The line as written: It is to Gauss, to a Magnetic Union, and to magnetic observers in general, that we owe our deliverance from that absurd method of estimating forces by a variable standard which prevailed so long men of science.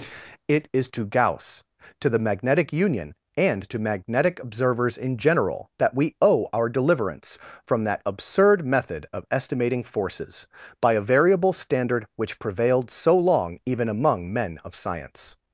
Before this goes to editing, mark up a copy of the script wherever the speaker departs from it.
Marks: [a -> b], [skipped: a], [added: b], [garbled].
It is to Gauss, to [a -> the] Magnetic Union, and to magnetic observers in general, that we owe our deliverance from that absurd method of estimating forces by a variable standard which prevailed so long [added: even among] men of science.